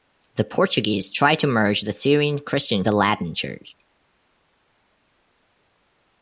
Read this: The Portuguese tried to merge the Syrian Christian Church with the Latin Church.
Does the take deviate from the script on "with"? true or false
true